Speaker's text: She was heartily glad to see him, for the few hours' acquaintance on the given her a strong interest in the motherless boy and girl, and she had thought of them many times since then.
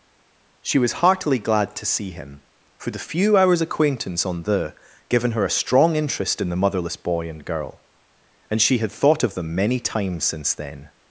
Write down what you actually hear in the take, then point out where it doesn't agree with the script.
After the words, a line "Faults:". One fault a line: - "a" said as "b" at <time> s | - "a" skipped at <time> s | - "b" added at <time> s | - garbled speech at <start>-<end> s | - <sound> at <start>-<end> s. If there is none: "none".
She was heartily glad to see him, for the few hours' acquaintance on the given her a strong interest in the motherless boy and girl, and she had thought of them many times since then.
Faults:
none